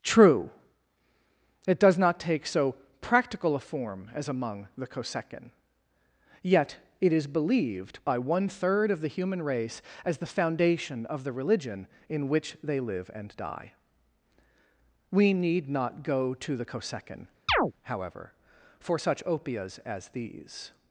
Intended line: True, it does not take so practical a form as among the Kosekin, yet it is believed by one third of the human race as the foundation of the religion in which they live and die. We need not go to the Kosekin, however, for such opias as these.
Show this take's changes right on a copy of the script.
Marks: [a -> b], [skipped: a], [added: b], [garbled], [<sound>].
True, it does not take so practical a form as among the Kosekin, yet it is believed by one third of the human race as the foundation of the religion in which they live and die. We need not go to the Kosekin, [chirp] however, for such opias as these.